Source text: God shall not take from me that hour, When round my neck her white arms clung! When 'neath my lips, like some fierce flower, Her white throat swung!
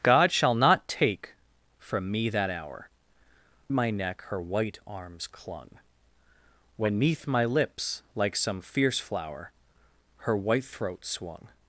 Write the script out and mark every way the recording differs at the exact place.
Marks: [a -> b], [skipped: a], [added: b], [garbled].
God shall not take from me that hour, [skipped: When round] my neck her white arms clung! When 'neath my lips, like some fierce flower, Her white throat swung!